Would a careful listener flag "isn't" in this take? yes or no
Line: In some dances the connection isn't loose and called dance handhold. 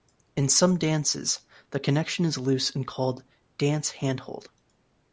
yes